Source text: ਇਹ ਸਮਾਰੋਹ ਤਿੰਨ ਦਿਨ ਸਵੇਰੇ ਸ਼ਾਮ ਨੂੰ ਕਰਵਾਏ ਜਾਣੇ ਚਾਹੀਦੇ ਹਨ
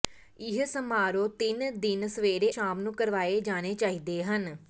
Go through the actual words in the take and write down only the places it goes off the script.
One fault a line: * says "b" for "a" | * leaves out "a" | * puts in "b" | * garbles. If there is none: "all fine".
all fine